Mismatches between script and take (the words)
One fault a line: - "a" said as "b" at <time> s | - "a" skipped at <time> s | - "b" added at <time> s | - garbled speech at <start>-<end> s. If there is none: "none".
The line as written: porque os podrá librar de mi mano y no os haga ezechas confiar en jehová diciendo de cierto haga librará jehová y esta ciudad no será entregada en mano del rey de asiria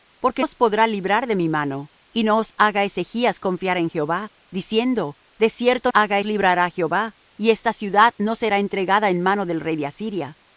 none